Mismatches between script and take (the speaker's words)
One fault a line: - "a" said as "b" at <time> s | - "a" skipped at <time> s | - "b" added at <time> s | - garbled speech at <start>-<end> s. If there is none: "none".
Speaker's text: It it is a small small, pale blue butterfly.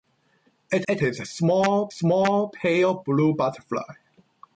none